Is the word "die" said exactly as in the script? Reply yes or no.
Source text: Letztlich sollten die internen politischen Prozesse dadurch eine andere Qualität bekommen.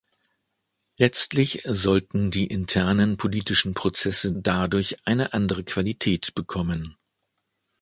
yes